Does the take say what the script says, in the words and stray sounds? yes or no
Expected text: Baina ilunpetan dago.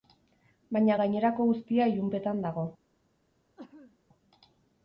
no